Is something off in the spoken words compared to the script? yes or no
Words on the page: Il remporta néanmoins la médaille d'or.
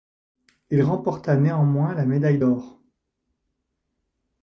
no